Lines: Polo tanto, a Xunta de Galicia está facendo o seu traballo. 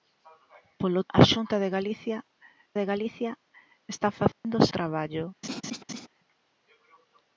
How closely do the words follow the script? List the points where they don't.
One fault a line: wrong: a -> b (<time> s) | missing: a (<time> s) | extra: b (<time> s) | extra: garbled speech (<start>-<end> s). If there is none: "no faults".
missing: tanto (1.0 s)
extra: de Galicia (2.8 s)
missing: seu (4.7 s)